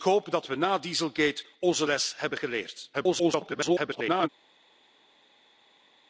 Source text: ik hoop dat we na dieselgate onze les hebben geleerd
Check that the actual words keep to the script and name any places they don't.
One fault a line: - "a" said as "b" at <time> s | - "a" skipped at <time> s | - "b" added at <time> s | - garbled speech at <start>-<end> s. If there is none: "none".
- garbled speech at 2.9-4.3 s